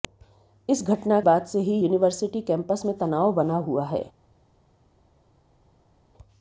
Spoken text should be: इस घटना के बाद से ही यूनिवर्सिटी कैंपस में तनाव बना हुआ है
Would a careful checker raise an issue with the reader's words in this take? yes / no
yes